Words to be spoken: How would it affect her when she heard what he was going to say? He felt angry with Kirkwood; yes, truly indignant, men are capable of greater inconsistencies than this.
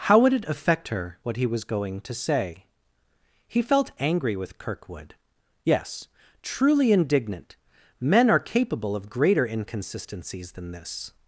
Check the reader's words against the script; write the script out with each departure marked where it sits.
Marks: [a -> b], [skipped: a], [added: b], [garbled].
How would it affect her [skipped: when she heard] what he was going to say? He felt angry with Kirkwood; yes, truly indignant, men are capable of greater inconsistencies than this.